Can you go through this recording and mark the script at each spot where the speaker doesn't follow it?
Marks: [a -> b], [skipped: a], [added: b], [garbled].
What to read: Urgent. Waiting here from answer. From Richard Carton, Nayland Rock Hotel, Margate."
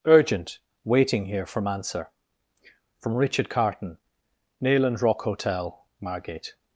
Urgent. Waiting here from answer. From Richard Carton, Nayland Rock Hotel, Margate."